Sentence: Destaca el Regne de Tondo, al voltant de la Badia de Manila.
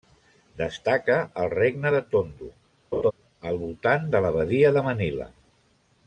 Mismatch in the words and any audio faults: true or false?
true